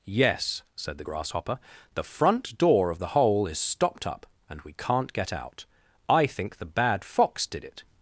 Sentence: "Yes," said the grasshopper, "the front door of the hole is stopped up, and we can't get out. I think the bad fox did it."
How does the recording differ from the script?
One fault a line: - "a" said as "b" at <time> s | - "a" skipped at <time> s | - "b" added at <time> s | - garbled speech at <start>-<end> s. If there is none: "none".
none